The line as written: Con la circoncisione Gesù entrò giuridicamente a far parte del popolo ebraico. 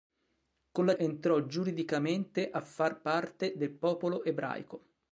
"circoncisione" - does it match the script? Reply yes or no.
no